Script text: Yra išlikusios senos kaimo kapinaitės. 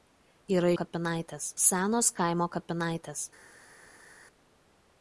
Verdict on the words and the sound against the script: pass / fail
fail